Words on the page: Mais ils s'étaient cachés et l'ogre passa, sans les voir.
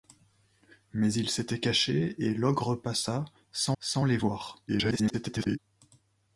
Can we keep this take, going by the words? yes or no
no